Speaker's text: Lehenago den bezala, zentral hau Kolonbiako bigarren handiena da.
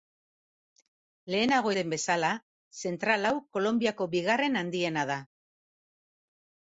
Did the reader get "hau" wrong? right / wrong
right